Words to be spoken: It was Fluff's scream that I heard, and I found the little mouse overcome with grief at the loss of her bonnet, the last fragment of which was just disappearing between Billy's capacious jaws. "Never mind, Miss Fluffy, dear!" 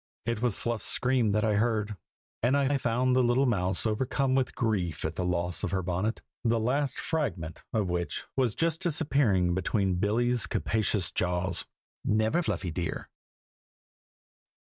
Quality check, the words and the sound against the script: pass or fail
fail